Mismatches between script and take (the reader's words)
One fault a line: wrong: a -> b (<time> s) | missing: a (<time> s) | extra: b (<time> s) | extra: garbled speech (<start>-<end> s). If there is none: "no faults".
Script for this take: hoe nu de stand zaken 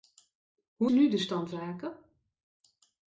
no faults